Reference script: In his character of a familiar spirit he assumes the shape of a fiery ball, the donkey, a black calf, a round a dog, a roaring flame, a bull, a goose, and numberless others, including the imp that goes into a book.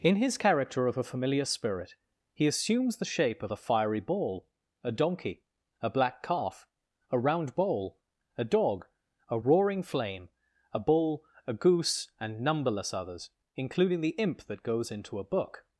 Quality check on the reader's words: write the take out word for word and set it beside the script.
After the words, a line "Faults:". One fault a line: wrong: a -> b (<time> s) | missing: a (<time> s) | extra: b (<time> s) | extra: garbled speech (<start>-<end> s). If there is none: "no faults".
In his character of a familiar spirit he assumes the shape of a fiery ball, a donkey, a black calf, a round bowl, a dog, a roaring flame, a bull, a goose, and numberless others, including the imp that goes into a book.
Faults:
wrong: the -> a (4.8 s)
extra: bowl (7.5 s)